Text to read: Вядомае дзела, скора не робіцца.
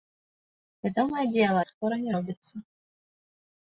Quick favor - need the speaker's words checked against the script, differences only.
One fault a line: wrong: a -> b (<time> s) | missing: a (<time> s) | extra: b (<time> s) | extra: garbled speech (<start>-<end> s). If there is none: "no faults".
no faults